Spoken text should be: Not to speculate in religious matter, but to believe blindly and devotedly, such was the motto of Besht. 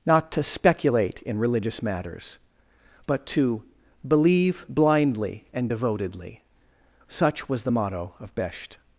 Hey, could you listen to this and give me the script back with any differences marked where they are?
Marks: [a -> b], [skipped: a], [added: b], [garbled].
Not to speculate in religious [matter, -> matters] but to believe blindly and devotedly, such was the motto of Besht.